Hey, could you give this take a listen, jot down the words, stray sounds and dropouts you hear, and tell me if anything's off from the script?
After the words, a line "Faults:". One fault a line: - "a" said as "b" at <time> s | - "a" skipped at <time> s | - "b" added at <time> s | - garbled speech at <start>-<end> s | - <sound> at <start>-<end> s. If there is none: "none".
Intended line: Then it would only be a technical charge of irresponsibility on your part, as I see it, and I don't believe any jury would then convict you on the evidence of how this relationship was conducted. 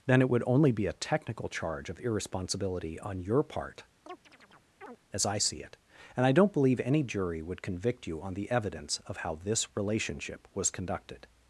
Then it would only be a technical charge of irresponsibility on your part, as I see it, and I don't believe any jury would convict you on the evidence of how this relationship was conducted.
Faults:
- chirp at 4.1-5.0 s
- "then" skipped at 7.6 s